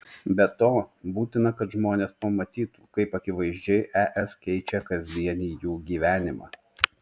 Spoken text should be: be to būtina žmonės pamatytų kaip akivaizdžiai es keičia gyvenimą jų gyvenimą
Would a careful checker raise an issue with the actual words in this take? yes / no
yes